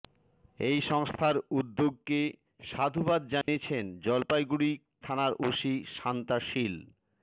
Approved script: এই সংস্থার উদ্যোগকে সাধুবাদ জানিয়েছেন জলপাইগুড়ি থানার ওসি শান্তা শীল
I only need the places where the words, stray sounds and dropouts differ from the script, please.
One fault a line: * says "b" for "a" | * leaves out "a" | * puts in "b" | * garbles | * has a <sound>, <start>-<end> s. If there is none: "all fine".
* has a dropout, 3.4-3.5 s